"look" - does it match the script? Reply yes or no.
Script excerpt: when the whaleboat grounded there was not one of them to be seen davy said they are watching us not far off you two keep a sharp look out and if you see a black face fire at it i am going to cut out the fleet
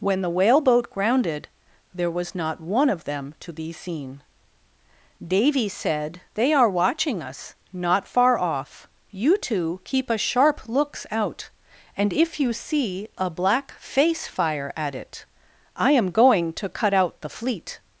no